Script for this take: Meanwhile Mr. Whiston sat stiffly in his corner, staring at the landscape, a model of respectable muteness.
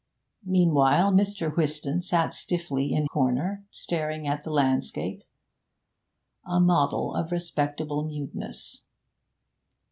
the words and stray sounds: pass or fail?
fail